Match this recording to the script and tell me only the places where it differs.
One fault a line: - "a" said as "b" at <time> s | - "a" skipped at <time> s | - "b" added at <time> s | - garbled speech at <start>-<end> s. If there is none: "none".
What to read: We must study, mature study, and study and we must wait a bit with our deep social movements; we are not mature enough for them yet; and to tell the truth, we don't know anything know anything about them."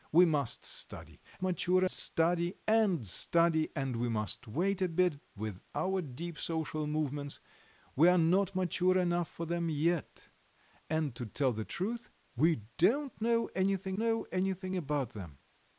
none